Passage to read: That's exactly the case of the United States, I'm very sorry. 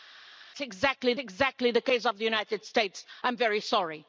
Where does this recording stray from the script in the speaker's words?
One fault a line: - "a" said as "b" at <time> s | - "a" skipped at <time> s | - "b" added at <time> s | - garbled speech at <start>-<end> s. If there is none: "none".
- "exactly" added at 1.2 s